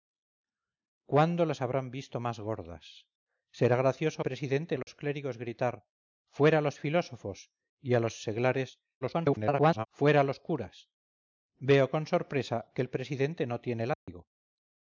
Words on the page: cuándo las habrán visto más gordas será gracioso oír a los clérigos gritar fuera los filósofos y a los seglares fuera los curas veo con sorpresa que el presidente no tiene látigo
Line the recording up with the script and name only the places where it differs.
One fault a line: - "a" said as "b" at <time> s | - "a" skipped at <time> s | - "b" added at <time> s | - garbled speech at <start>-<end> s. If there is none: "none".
- "oír" said as "presidente" at 4.2 s
- garbled speech at 9.0-9.9 s